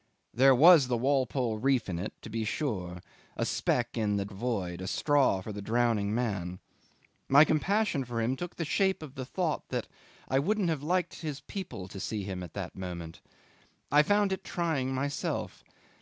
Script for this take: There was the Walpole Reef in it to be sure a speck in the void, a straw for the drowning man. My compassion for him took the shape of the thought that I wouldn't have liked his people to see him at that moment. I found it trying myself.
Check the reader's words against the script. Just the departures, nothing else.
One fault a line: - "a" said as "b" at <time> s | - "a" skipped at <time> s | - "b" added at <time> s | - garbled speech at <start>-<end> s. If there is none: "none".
none